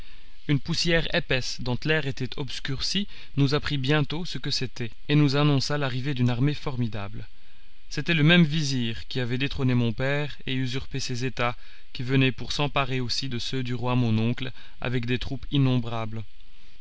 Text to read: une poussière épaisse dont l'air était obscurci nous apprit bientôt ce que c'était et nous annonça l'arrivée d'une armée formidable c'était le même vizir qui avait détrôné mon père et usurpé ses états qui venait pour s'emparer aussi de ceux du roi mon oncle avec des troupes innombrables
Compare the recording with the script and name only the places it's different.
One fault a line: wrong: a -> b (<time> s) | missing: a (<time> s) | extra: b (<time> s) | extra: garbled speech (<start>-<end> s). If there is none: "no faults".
no faults